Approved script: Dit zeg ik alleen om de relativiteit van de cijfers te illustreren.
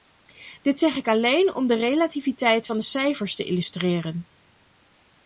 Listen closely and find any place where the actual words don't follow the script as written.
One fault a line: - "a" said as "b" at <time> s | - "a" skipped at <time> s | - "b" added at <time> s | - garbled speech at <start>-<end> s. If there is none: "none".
none